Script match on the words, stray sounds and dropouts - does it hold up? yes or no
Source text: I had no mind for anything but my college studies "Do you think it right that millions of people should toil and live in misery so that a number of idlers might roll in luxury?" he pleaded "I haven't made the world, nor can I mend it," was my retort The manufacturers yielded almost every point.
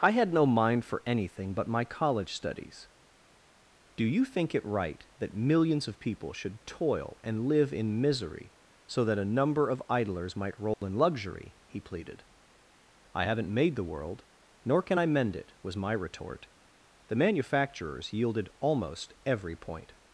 no